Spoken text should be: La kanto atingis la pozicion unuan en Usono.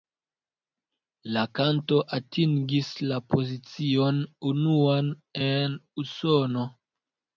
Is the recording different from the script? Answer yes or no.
no